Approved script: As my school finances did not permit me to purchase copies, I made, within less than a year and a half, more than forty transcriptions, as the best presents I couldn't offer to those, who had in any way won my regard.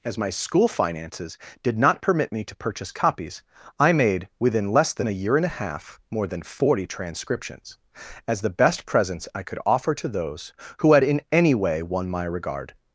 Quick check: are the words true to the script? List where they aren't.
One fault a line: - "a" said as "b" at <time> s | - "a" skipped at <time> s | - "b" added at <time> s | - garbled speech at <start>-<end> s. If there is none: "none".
- "couldn't" said as "could" at 9.4 s